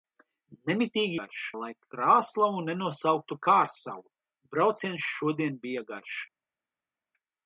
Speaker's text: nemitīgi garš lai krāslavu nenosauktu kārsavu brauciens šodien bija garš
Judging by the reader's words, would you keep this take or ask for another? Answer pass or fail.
pass